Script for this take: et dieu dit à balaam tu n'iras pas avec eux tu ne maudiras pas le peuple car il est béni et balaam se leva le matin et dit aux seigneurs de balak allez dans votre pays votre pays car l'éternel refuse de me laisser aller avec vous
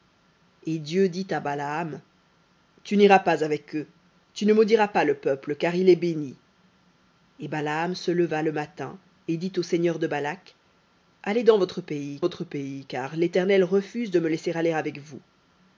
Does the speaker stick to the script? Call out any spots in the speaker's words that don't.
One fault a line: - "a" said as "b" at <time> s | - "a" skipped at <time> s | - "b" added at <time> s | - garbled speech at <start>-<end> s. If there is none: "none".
none